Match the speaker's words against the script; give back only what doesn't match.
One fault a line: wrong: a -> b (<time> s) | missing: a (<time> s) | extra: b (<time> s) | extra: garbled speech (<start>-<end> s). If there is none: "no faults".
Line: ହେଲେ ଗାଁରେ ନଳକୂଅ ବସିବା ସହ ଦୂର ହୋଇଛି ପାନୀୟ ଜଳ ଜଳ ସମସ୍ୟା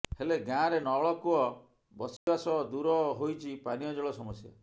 missing: ଜଳ (4.2 s)